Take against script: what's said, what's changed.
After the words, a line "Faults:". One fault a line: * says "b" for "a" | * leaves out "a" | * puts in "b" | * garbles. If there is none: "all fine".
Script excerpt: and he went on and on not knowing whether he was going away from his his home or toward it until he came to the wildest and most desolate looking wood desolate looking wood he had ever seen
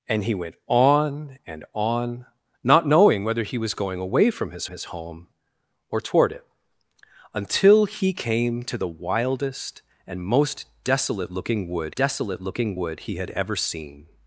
and he went on and on not knowing whether he was going away from his his home or toward it until he came to the wildest and most desolate looking wood desolate looking wood he had ever seen
Faults:
all fine